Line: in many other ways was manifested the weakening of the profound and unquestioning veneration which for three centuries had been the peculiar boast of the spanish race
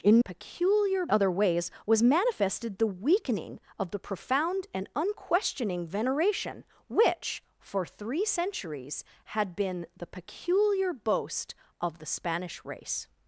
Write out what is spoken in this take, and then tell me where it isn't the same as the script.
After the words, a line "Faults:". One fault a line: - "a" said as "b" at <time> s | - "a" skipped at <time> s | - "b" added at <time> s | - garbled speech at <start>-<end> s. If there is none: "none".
in peculiar other ways was manifested the weakening of the profound and unquestioning veneration which for three centuries had been the peculiar boast of the spanish race
Faults:
- "many" said as "peculiar" at 0.2 s